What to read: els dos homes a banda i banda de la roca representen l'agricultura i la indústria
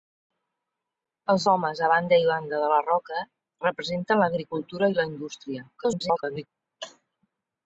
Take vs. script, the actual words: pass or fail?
fail